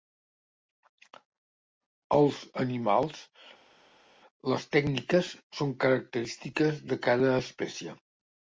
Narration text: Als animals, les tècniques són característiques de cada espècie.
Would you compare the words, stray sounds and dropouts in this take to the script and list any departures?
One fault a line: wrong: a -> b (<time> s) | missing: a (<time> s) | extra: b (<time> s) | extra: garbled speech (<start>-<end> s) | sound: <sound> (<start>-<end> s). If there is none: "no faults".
no faults